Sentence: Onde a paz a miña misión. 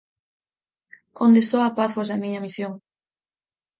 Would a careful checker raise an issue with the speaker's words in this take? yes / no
yes